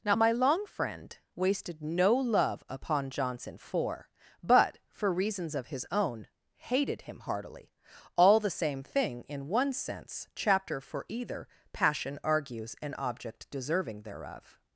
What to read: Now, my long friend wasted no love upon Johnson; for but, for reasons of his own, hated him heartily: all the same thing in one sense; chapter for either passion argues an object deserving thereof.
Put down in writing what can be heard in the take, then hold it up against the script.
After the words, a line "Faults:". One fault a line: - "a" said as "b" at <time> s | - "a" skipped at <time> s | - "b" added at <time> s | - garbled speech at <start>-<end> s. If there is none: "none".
Now, my long friend wasted no love upon Johnson; for but, for reasons of his own, hated him heartily: all the same thing in one sense; chapter for either passion argues an object deserving thereof.
Faults:
none